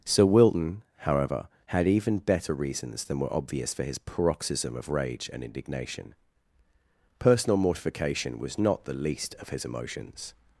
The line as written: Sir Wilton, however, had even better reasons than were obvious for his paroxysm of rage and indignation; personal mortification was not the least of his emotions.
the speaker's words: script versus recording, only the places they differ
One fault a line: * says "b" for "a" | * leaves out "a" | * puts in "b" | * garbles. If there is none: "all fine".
all fine